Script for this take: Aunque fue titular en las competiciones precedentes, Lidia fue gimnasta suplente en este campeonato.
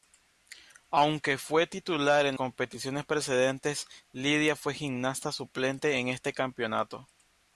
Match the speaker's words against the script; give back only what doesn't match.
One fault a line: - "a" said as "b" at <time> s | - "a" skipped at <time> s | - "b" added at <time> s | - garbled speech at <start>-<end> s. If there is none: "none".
- "las" skipped at 2.4 s